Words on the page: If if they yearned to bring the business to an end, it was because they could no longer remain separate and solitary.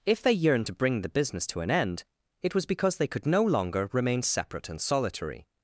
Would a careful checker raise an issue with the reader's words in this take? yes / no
yes